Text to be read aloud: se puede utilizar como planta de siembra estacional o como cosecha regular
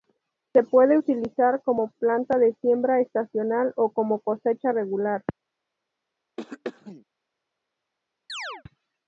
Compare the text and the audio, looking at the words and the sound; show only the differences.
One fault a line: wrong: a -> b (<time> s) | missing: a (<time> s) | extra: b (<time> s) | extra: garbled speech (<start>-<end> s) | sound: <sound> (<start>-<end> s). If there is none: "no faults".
sound: throat clearing (6.4-7.0 s)
sound: chirp (8.3-8.6 s)